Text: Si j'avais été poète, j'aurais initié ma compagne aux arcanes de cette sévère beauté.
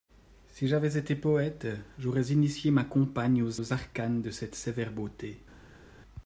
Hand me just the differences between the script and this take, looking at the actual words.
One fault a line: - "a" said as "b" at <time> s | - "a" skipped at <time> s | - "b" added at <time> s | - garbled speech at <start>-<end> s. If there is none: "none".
- "aux" added at 3.6 s